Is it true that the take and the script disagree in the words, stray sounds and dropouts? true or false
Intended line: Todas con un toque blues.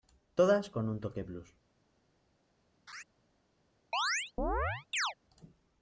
true